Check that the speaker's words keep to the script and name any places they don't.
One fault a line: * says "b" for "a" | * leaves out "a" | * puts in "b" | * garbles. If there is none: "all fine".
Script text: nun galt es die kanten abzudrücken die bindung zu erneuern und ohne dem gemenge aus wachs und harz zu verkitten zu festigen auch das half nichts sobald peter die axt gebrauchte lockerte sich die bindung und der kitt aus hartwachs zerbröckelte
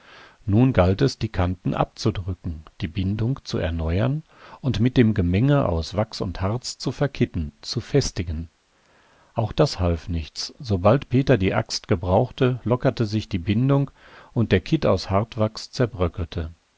* says "mit" for "ohne"